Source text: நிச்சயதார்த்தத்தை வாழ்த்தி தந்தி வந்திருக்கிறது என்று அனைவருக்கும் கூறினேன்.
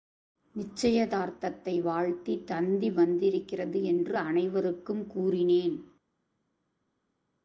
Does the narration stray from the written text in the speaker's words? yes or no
no